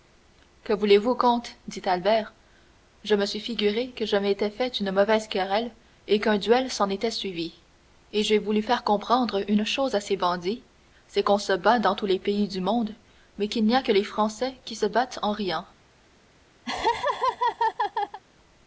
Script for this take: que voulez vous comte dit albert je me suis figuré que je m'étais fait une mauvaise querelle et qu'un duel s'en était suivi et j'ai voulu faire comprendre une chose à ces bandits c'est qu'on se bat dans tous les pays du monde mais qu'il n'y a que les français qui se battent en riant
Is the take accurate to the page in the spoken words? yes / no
yes